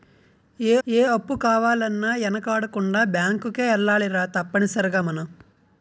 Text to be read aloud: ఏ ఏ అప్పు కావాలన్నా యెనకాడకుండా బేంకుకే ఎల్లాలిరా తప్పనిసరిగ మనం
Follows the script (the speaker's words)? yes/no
yes